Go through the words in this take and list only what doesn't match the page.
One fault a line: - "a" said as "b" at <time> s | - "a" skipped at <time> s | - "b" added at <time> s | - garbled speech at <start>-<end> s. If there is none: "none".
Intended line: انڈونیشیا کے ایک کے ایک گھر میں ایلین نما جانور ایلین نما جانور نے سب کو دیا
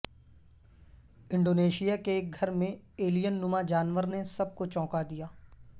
- "کے ایک" skipped at 2.3 s
- "ایلین نما جانور" skipped at 4.0 s
- "چونکا" added at 4.7 s